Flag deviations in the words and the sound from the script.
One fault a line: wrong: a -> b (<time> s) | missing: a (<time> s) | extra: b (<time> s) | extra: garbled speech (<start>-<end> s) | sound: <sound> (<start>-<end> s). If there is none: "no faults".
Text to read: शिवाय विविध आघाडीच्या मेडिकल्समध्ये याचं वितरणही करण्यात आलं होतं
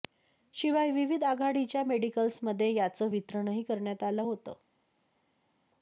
no faults